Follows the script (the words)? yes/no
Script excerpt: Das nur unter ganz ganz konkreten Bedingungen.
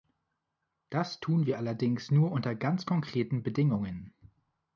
no